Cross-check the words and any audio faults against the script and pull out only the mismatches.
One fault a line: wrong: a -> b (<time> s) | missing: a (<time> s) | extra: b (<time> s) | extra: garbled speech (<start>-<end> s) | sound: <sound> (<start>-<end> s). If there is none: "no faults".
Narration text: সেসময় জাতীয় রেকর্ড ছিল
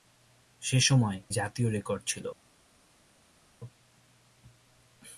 no faults